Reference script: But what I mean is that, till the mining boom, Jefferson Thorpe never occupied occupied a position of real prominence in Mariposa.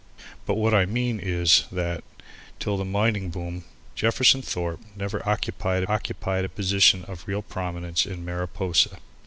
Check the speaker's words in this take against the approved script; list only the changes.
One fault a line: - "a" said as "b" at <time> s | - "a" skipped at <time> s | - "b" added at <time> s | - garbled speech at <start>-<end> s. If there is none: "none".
none